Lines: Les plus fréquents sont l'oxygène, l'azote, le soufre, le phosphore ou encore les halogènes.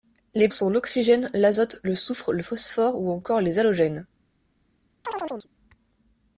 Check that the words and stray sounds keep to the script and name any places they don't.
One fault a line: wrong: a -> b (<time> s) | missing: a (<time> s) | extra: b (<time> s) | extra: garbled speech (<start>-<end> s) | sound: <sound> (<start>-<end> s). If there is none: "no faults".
missing: plus fréquents (0.5 s)
sound: chirp (5.0-5.5 s)